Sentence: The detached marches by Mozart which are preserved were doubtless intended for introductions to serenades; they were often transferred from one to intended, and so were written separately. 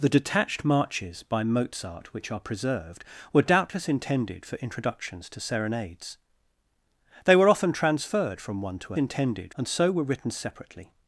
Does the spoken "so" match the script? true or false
true